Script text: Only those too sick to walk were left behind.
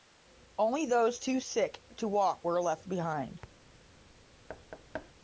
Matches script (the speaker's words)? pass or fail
pass